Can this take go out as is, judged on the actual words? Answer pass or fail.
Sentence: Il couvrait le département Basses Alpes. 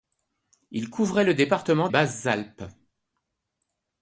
pass